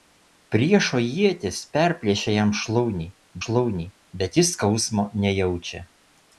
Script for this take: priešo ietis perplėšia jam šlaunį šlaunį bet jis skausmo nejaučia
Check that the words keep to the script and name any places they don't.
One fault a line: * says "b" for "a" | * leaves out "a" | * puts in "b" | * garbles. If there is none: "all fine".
all fine